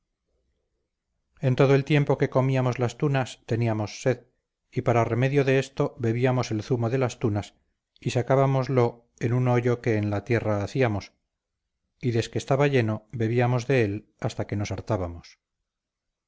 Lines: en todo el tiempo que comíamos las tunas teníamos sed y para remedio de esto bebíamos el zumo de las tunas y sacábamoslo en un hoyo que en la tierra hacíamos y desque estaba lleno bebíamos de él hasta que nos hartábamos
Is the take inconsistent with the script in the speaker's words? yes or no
no